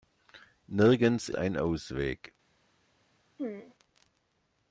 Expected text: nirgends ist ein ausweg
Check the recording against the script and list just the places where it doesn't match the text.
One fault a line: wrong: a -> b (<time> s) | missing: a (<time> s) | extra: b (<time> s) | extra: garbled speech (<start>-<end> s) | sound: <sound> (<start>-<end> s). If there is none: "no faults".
missing: ist (1.3 s)
sound: throat clearing (3.4-3.8 s)